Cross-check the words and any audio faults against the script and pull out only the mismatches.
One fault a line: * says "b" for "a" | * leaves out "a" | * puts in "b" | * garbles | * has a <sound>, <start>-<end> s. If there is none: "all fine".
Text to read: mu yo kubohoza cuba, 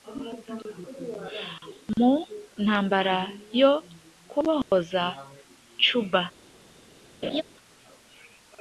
* puts in "ntambara"
* has a dropout, 4.6-4.7 s
* has a laugh, 7.2-7.4 s